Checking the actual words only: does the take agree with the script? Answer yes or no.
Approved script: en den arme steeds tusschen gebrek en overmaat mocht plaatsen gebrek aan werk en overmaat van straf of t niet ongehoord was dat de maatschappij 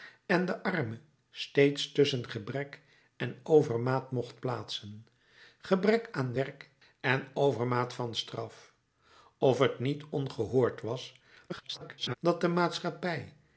no